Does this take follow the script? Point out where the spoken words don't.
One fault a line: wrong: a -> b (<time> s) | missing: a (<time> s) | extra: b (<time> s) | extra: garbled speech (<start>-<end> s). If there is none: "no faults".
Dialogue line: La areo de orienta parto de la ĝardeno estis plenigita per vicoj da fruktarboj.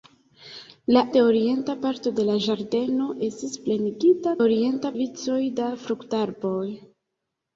missing: areo (1.0 s)
wrong: per -> orienta (4.4 s)